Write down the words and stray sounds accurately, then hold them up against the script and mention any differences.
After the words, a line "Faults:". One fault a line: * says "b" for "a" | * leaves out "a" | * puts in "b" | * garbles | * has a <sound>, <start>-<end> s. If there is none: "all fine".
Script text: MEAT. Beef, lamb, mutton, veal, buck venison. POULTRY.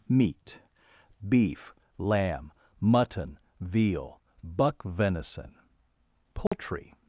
MEAT. Beef, lamb, mutton, veal, buck venison. POULTRY.
Faults:
* has a dropout, 6.5-6.5 s